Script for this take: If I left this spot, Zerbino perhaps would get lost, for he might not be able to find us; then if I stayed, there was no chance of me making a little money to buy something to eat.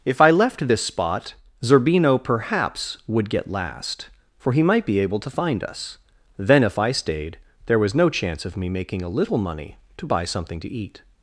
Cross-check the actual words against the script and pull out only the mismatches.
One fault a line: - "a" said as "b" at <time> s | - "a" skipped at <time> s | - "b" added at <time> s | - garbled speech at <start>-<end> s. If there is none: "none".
- "lost" said as "last" at 3.5 s
- "not" skipped at 4.8 s